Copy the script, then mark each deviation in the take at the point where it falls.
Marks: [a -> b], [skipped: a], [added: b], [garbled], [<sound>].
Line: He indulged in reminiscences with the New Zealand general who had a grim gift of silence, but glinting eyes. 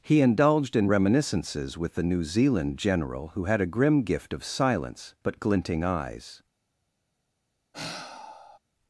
He indulged in reminiscences with the New Zealand general who had a grim gift of silence, but glinting eyes. [sigh]